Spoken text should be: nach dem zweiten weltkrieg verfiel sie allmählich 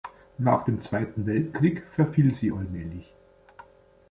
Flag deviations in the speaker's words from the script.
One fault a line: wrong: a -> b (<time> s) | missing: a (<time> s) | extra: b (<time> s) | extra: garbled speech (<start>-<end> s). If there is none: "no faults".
no faults